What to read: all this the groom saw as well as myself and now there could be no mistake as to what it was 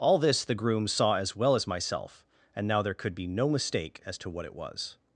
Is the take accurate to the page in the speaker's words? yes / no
yes